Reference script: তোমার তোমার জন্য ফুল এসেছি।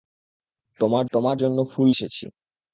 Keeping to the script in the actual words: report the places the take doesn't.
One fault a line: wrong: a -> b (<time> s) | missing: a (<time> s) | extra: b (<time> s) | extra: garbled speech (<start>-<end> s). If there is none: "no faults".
no faults